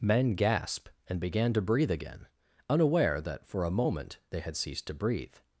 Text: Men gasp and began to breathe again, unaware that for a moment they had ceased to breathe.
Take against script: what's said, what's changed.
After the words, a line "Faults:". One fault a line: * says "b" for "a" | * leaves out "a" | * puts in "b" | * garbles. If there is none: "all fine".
Men gasp and began to breathe again, unaware that for a moment they had ceased to breathe.
Faults:
all fine